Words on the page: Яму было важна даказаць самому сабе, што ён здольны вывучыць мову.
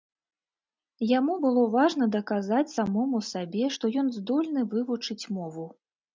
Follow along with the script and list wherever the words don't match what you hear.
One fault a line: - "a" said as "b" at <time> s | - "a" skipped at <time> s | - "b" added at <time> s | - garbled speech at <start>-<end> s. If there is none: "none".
none